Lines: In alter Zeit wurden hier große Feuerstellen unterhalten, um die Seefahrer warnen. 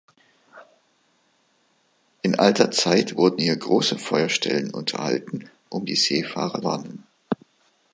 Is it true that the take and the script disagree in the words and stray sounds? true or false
false